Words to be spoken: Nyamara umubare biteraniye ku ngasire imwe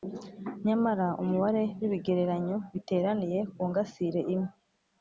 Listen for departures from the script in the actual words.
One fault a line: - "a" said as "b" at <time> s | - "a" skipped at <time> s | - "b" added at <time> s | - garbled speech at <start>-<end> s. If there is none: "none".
- "w'ibigereranyo" added at 1.8 s